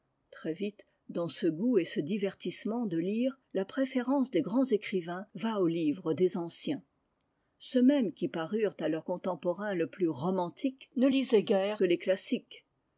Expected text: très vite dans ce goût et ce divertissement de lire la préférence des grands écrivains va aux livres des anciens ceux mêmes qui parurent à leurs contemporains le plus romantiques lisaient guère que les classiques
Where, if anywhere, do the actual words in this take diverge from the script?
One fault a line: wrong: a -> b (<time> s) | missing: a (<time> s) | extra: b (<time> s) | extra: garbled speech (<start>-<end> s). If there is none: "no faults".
extra: ne (10.9 s)